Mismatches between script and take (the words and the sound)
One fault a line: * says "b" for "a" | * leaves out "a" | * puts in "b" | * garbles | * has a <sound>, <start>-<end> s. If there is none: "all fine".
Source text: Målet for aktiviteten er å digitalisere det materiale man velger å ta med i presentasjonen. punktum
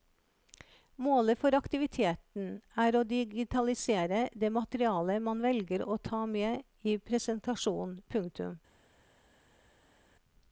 all fine